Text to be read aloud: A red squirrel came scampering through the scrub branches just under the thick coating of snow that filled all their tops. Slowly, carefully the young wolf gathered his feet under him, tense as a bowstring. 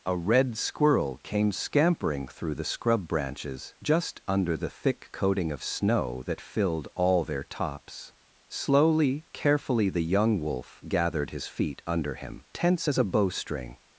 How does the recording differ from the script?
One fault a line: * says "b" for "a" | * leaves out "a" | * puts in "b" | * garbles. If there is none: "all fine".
all fine